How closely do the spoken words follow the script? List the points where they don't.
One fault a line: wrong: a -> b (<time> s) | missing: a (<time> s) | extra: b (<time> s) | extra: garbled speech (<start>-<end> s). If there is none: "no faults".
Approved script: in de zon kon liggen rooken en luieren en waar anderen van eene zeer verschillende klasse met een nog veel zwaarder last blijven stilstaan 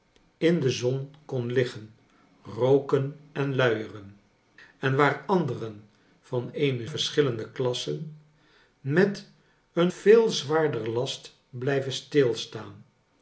missing: zeer (6.9 s)
missing: nog (9.9 s)